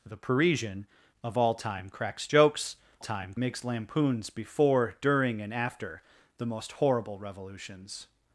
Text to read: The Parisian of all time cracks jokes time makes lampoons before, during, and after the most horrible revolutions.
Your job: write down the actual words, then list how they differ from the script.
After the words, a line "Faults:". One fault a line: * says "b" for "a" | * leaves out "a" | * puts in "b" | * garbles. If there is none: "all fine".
The Parisian of all time cracks jokes time makes lampoons before, during, and after the most horrible revolutions.
Faults:
all fine